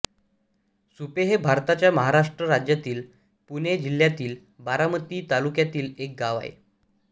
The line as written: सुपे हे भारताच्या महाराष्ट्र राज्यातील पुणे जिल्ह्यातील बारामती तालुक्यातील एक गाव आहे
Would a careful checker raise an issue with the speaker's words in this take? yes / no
no